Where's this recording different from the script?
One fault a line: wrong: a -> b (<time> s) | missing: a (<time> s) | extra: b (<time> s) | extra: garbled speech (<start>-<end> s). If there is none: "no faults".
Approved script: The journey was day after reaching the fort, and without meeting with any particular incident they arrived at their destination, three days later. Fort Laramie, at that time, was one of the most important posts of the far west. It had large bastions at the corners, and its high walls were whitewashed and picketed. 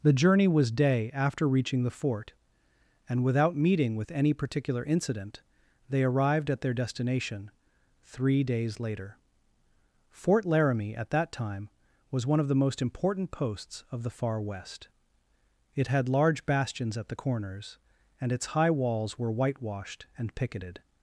no faults